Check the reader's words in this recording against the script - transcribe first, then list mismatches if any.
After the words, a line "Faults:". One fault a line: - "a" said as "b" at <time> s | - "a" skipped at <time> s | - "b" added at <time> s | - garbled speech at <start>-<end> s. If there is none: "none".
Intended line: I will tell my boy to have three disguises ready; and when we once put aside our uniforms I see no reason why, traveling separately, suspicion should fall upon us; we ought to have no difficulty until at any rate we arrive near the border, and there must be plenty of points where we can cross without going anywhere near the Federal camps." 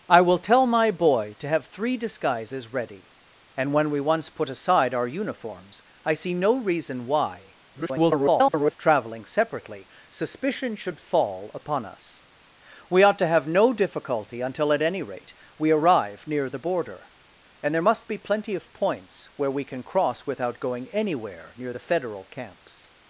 I will tell my boy to have three disguises ready; and when we once put aside our uniforms I see no reason why, [garbled] traveling separately, suspicion should fall upon us; we ought to have no difficulty until at any rate we arrive near the border, and there must be plenty of points where we can cross without going anywhere near the Federal camps."
Faults:
- garbled speech at 7.7-8.8 s